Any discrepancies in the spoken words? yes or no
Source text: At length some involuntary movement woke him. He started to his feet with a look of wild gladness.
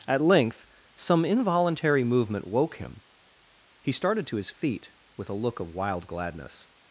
no